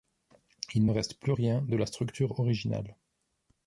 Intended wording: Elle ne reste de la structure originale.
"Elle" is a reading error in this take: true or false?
true